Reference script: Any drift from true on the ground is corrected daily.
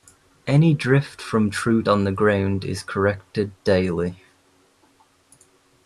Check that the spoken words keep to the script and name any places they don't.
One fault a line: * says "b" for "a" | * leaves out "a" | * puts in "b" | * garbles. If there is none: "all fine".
all fine